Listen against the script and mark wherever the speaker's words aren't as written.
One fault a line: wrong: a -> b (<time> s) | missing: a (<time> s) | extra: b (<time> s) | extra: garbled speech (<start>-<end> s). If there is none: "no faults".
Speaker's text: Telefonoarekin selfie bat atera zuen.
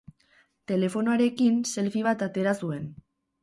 no faults